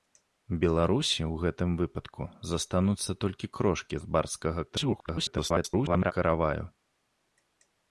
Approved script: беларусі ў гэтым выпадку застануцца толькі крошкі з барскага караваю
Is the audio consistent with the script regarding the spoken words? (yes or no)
no